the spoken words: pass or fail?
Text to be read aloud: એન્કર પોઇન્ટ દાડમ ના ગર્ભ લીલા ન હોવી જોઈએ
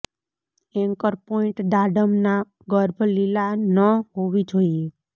pass